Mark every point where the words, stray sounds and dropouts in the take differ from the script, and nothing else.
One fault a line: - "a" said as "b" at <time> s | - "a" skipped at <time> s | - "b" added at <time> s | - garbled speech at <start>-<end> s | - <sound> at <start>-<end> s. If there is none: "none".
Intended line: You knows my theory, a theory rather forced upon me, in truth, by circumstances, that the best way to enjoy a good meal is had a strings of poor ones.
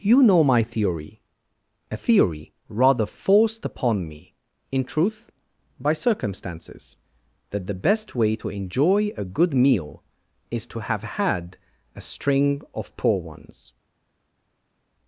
- "knows" said as "know" at 0.2 s
- "to have" added at 10.7 s
- "strings" said as "string" at 12.0 s